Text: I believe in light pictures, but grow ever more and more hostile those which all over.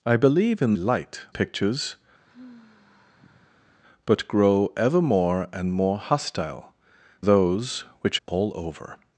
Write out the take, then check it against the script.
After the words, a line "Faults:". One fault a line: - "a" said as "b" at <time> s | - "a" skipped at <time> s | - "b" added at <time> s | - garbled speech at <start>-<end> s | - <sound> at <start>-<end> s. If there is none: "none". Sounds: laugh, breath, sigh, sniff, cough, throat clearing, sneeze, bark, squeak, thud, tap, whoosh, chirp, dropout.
I believe in light pictures, but grow ever more and more hostile those which all over.
Faults:
- sigh at 2.3-3.8 s